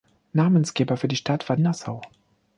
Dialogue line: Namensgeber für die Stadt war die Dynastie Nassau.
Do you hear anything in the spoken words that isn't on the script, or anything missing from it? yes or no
yes